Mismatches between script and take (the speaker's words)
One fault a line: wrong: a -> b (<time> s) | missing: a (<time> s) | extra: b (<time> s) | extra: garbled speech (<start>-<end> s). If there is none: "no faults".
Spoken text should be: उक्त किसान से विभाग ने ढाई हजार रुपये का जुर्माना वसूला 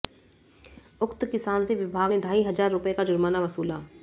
no faults